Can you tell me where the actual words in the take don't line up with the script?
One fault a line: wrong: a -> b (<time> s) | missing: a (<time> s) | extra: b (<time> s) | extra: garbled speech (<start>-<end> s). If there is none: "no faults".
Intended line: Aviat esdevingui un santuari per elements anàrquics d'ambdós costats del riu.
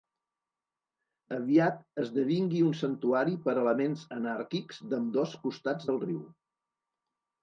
no faults